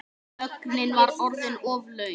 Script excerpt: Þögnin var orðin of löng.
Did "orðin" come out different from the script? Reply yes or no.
no